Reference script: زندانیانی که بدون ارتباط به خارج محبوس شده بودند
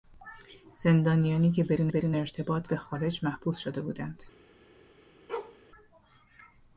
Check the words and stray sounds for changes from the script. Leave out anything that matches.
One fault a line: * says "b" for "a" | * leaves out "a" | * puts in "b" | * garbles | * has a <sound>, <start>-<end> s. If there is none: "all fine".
* puts in "بدون"
* has a bark, 5.3-5.6 s